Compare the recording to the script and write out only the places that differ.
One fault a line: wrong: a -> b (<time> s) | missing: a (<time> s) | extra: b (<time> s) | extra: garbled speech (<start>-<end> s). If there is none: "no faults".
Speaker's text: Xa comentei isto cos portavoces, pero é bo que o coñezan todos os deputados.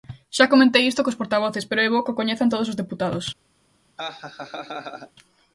no faults